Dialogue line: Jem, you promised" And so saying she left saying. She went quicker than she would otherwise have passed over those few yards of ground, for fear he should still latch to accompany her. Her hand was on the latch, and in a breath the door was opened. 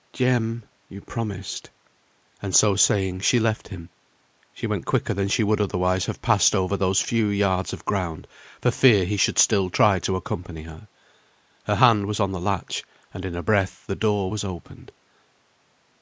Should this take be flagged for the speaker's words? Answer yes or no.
yes